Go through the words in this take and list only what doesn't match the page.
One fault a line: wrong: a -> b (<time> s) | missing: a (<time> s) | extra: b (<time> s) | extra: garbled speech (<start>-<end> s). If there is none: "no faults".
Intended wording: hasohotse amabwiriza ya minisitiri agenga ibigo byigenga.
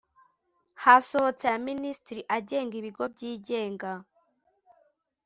missing: amabwiriza (1.4 s)